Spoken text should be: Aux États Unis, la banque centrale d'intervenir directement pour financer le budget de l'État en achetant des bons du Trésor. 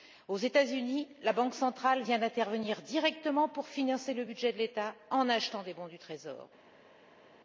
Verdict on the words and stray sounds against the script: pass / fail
fail